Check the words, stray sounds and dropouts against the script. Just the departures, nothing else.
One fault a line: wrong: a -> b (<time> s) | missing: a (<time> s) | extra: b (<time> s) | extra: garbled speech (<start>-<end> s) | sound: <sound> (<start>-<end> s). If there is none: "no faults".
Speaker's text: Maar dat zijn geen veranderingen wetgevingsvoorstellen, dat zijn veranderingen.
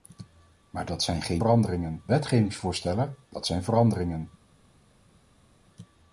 no faults